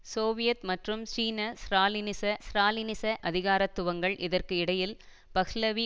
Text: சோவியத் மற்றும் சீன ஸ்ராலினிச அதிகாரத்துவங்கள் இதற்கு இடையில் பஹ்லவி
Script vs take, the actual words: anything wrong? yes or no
yes